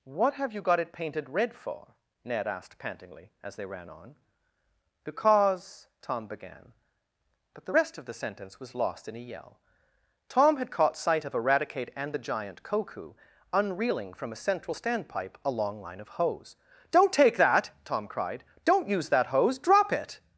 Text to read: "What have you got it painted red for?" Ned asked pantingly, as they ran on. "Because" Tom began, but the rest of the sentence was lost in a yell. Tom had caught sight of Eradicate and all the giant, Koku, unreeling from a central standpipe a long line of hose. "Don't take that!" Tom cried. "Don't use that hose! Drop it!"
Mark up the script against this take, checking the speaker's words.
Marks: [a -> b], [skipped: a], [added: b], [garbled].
"What have you got it painted red for?" Ned asked pantingly, as they ran on. "Because" Tom began, but the rest of the sentence was lost in a yell. Tom had caught sight of Eradicate and [skipped: all] the giant, Koku, unreeling from a central standpipe a long line of hose. "Don't take that!" Tom cried. "Don't use that hose! Drop it!"